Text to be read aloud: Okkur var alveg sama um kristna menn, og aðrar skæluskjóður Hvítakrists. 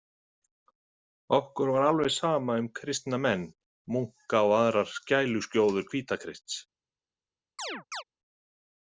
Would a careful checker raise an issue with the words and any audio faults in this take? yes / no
yes